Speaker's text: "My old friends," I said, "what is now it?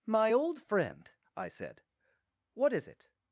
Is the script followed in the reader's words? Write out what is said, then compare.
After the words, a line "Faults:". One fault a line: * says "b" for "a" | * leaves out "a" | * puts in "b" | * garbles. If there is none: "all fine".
"My old friend," I said, "what is it?
Faults:
* says "friend" for "friends"
* leaves out "now"